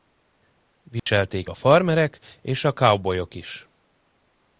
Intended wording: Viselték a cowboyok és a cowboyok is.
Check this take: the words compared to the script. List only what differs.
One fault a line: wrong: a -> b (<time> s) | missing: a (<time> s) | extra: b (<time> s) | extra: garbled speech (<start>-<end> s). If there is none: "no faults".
wrong: cowboyok -> farmerek (1.5 s)